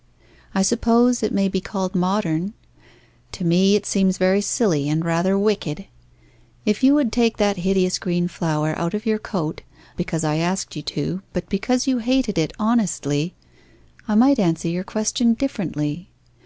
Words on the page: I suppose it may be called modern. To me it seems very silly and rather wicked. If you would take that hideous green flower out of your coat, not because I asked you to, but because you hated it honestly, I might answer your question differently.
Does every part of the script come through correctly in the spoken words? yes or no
no